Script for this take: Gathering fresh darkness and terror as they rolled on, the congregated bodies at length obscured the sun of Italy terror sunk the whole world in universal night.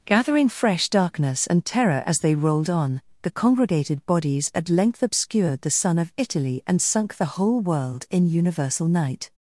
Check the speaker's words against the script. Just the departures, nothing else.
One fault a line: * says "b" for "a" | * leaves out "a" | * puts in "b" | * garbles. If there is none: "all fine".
* says "and" for "terror"